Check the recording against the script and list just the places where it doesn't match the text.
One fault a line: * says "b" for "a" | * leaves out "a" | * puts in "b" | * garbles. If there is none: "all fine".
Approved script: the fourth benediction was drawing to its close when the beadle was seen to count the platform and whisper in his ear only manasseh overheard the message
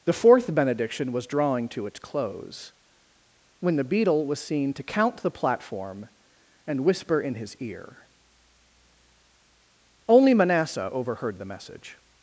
all fine